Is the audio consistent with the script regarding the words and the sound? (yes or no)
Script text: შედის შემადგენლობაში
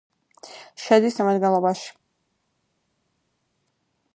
yes